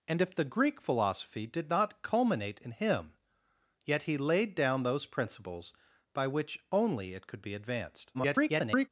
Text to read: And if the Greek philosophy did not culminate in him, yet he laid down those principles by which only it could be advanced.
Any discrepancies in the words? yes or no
yes